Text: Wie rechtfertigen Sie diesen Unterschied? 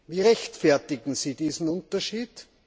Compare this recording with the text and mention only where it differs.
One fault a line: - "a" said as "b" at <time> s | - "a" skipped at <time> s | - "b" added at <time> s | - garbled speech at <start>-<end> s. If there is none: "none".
none